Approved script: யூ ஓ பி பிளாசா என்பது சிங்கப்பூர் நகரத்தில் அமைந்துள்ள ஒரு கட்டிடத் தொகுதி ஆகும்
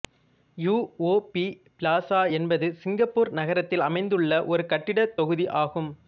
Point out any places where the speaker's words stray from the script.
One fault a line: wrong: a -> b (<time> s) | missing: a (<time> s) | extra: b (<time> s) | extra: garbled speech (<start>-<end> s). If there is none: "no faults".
no faults